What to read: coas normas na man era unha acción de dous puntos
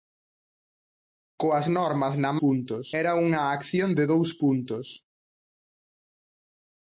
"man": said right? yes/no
no